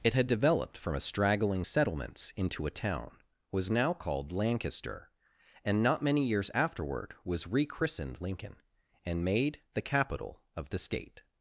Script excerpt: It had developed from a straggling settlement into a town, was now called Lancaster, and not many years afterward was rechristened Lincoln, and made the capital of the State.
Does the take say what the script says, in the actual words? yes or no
no